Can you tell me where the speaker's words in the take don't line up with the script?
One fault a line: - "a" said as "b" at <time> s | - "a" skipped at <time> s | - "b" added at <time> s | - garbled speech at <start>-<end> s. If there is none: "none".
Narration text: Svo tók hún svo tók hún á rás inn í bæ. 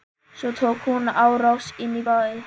- "svo tók hún" skipped at 1.1 s